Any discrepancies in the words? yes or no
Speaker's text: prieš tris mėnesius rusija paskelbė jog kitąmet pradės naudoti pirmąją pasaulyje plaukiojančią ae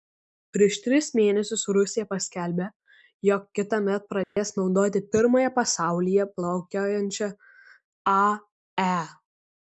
no